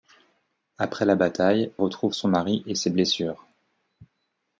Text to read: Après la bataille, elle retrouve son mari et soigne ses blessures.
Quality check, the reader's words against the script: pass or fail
fail